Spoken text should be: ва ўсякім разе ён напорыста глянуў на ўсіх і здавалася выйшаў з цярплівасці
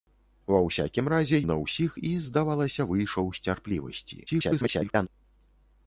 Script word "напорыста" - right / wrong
wrong